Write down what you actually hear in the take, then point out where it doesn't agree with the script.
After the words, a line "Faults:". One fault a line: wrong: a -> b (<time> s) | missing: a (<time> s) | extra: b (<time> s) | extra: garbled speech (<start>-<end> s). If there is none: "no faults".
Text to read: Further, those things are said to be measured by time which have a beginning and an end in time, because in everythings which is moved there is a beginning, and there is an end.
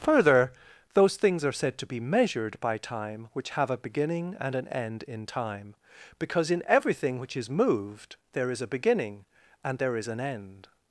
Further, those things are said to be measured by time which have a beginning and an end in time, because in everything which is moved there is a beginning, and there is an end.
Faults:
wrong: everythings -> everything (6.7 s)